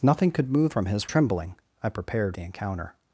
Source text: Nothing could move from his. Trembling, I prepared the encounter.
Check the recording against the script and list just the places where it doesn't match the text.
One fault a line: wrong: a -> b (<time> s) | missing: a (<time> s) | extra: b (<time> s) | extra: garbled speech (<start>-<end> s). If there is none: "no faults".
no faults